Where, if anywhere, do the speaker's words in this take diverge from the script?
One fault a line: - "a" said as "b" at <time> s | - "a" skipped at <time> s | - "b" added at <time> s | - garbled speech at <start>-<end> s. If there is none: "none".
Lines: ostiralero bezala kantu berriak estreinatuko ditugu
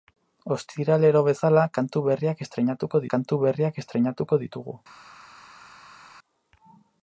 - "kantu berriak estreinatuko" added at 3.1 s